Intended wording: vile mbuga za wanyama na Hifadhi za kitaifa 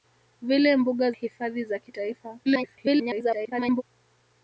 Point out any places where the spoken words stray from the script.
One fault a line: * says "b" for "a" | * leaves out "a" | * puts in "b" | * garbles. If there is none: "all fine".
* leaves out "za wanyama na"
* garbles